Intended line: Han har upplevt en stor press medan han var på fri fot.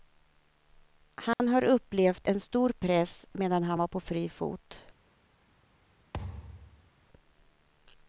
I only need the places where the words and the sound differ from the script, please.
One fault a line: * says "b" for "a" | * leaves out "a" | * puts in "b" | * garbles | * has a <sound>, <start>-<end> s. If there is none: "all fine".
* has a dropout, 1.3-1.4 s
* has a thud, 6.1-6.9 s